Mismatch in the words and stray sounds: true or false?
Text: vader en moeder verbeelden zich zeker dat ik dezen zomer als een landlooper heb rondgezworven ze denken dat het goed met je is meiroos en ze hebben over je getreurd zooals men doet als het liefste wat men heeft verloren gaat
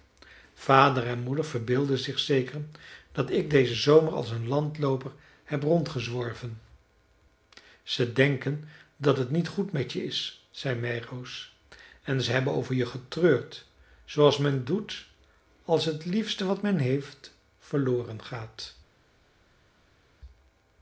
true